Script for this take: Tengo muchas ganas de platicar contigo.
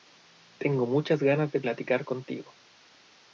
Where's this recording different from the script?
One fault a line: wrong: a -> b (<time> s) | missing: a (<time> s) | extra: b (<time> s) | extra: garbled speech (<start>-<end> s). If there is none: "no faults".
no faults